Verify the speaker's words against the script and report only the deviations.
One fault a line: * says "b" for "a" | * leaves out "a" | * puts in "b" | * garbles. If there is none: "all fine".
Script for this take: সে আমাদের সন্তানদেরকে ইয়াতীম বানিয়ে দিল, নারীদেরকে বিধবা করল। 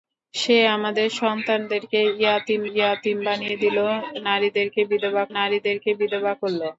* puts in "ইয়াতীম"
* puts in "নারীদেরকে বিধবা"